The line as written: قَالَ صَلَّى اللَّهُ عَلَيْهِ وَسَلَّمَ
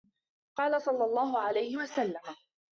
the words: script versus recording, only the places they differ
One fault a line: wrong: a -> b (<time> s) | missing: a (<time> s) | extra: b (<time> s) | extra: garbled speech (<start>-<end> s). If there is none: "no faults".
no faults